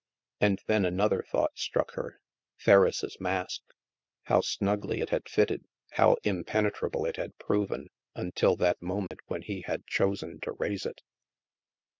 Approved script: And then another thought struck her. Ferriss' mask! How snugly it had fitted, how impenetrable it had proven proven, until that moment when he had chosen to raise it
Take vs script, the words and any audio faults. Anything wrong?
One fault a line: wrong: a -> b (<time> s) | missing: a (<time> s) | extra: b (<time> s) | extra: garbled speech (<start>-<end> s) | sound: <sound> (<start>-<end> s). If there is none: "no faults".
missing: proven (7.9 s)
sound: dropout (9.1-9.1 s)